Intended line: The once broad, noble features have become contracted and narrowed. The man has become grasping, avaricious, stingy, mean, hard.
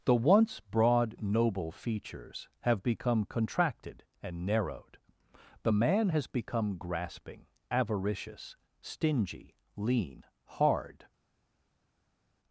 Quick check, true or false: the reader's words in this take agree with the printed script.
false